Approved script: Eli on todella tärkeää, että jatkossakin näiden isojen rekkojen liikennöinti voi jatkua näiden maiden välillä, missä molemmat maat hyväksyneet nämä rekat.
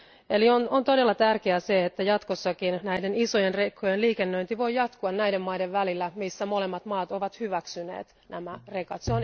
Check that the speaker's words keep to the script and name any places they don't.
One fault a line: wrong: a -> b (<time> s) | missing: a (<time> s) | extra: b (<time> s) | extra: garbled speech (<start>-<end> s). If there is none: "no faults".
extra: ovat (7.1 s)